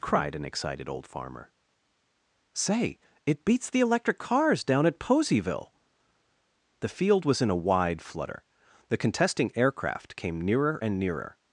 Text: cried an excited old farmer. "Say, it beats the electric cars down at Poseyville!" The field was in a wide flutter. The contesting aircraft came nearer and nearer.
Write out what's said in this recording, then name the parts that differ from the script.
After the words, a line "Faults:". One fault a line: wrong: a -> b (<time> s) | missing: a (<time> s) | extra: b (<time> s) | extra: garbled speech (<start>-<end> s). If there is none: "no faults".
cried an excited old farmer. "Say, it beats the electric cars down at Poseyville!" The field was in a wide flutter. The contesting aircraft came nearer and nearer.
Faults:
no faults